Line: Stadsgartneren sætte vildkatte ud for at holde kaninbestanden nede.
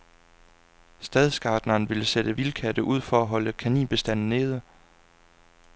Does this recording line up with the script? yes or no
no